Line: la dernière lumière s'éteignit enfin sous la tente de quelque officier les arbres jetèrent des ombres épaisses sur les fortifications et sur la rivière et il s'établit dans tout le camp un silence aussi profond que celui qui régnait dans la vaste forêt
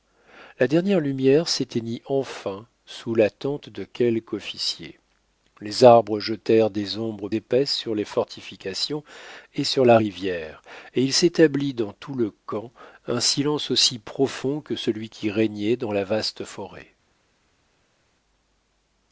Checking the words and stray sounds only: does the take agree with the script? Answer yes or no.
yes